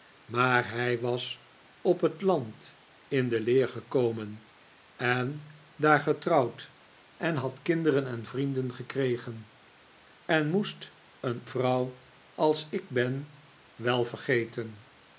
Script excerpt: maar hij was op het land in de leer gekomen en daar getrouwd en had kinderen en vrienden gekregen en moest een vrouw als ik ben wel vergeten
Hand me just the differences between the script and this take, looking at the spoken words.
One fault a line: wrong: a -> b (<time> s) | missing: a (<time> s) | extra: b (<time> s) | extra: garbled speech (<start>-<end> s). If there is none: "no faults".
no faults